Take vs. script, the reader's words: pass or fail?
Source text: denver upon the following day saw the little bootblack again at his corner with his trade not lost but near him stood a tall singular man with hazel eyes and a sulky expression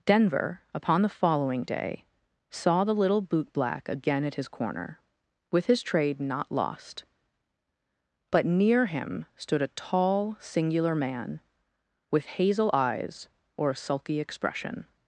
fail